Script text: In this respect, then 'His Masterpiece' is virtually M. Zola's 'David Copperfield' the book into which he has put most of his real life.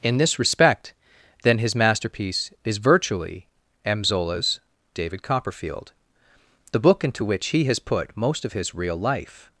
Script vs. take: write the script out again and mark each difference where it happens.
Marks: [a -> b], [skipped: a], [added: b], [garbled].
In this respect, then 'His Masterpiece' is virtually M. Zola's 'David Copperfield' the book into which he has put most of his real life.